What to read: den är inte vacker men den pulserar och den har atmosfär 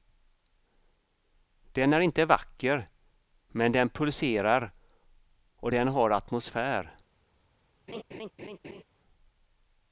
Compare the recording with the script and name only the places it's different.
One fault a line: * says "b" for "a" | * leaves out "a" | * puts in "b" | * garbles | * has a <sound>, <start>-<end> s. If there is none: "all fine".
* has a laugh, 7.9-8.8 s